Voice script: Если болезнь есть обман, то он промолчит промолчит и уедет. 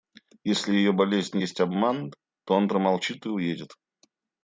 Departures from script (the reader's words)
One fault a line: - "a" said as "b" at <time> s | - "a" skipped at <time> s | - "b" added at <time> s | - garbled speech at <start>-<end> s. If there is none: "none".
- "ее" added at 0.7 s
- "промолчит" skipped at 3.2 s